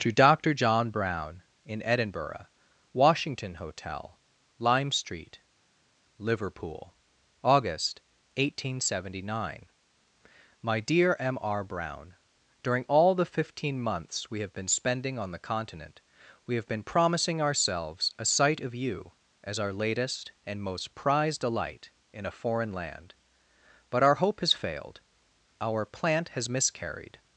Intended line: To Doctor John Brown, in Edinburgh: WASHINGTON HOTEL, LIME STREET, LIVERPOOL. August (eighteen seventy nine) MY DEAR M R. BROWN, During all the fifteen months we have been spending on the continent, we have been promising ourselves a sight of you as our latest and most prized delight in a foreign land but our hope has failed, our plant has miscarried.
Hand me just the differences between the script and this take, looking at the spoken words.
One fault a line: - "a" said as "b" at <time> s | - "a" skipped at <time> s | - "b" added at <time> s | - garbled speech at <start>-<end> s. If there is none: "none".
none